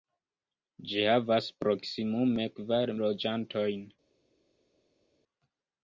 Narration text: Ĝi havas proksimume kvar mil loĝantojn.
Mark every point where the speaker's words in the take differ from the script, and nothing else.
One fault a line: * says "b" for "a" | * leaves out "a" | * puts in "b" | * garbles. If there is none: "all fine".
* leaves out "mil"